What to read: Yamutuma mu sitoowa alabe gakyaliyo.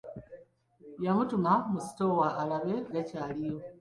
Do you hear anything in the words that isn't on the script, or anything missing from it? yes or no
no